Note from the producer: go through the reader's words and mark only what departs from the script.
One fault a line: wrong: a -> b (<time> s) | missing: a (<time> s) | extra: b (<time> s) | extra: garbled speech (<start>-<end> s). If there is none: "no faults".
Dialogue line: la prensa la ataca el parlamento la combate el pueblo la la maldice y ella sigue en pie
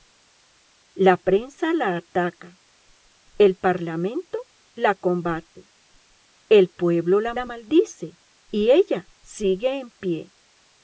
no faults